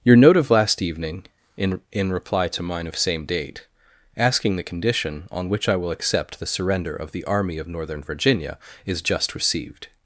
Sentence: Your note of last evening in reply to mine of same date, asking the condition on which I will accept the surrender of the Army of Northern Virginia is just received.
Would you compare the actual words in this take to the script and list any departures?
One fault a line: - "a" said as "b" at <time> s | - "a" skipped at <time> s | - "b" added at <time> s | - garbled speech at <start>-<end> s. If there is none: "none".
- "in" added at 1.9 s